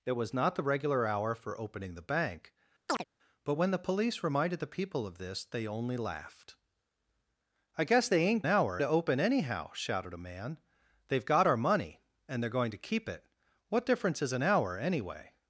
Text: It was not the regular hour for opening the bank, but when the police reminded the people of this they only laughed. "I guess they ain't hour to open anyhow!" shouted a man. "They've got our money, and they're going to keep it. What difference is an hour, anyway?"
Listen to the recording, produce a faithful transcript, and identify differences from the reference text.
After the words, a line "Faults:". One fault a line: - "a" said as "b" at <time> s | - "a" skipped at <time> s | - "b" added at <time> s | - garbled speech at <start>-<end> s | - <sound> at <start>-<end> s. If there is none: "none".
It was not the regular hour for opening the bank, but when the police reminded the people of this they only laughed. "I guess they ain't hour to open anyhow!" shouted a man. "They've got our money, and they're going to keep it. What difference is an hour, anyway?"
Faults:
- chirp at 2.9-3.0 s